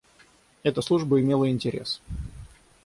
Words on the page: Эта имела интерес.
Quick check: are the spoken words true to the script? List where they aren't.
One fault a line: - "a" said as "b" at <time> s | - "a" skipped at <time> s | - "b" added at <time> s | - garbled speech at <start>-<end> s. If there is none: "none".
- "служба" added at 0.8 s